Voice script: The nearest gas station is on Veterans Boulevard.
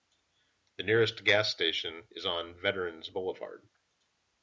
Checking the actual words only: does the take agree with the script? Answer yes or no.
yes